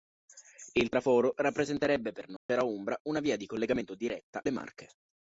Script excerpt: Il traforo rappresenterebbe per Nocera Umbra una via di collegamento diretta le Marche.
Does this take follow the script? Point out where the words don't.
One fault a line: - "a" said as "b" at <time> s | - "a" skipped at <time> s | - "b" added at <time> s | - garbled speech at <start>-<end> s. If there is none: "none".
none